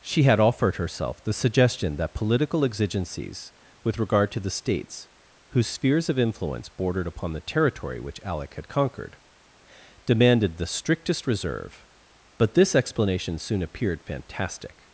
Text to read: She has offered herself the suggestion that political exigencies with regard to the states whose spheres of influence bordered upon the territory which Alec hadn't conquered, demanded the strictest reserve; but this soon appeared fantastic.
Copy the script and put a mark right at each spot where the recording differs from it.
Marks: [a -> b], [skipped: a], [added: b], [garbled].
She [has -> had] offered herself the suggestion that political exigencies with regard to the states whose spheres of influence bordered upon the territory which Alec [hadn't -> had] conquered, demanded the strictest reserve; but this [added: explanation] soon appeared fantastic.